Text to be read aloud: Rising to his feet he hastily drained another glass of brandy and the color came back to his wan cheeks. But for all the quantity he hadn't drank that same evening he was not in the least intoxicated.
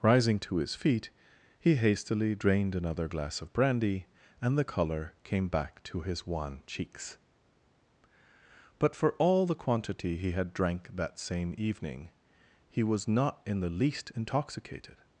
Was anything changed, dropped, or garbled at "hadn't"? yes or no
yes